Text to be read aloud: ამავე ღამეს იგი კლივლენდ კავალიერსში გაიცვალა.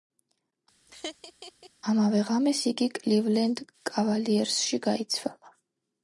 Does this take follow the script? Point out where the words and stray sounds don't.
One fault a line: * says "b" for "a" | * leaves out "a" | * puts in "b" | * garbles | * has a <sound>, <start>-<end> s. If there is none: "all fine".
* has a laugh, 0.9-1.7 s